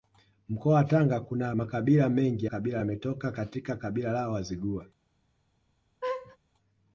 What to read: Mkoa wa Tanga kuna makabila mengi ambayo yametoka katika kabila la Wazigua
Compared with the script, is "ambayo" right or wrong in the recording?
wrong